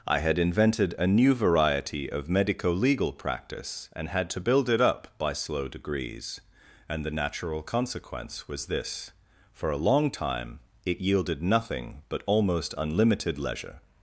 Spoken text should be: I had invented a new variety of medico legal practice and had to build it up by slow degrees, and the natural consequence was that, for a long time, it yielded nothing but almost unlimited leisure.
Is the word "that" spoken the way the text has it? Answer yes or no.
no